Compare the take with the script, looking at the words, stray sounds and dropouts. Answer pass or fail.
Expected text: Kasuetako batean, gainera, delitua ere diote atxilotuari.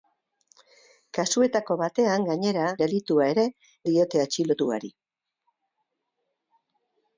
pass